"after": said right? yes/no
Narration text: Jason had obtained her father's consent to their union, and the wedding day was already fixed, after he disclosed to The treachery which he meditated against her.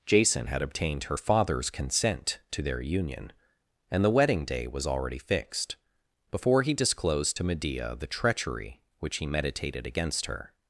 no